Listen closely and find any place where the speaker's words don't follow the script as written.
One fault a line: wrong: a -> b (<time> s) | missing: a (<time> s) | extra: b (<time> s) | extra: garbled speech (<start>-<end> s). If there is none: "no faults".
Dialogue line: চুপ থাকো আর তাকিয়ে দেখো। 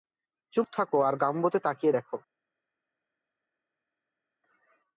extra: গাম্বোতে (1.1 s)